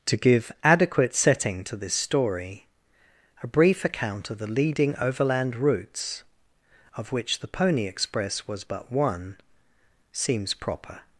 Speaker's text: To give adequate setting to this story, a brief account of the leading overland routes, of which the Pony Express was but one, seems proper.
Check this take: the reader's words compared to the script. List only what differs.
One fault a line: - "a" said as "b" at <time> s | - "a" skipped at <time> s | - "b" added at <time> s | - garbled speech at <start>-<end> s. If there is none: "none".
none